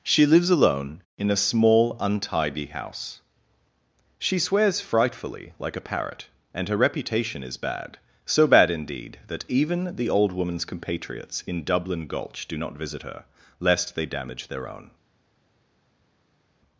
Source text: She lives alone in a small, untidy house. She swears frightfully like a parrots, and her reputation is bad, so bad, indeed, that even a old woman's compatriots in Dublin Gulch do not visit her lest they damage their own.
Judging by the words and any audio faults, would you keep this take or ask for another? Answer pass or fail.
fail